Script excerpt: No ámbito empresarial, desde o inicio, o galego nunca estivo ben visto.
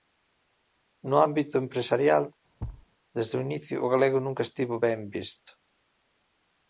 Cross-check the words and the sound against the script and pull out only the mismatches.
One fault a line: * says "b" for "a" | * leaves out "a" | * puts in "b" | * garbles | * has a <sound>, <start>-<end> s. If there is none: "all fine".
* has a thud, 2.6-2.9 s